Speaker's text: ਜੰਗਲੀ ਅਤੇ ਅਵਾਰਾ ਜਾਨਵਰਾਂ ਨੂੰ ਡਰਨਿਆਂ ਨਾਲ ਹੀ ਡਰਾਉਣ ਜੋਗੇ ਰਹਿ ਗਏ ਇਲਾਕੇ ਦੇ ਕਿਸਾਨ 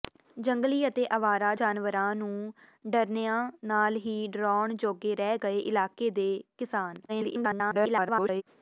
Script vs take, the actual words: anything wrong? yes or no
yes